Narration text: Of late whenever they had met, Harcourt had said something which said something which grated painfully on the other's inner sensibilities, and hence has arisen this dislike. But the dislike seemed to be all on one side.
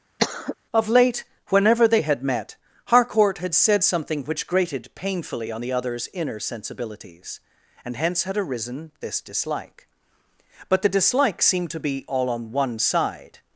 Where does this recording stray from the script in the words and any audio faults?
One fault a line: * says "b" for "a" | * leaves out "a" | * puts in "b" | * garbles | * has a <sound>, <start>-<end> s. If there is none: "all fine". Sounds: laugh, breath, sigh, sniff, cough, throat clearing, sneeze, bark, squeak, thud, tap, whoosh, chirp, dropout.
* has a cough, 0.2-0.5 s
* leaves out "said something which"
* says "had" for "has"